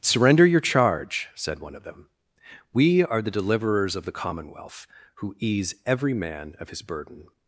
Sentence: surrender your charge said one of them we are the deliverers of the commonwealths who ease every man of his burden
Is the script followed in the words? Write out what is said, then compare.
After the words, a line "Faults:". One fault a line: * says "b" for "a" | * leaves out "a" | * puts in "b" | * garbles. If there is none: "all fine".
surrender your charge said one of them we are the deliverers of the commonwealth who ease every man of his burden
Faults:
* says "commonwealth" for "commonwealths"